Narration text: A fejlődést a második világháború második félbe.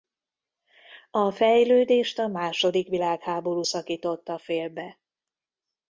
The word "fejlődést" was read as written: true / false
true